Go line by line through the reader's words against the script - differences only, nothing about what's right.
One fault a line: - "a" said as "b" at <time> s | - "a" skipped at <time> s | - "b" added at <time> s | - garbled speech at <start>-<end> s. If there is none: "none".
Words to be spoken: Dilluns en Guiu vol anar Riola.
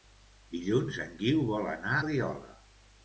none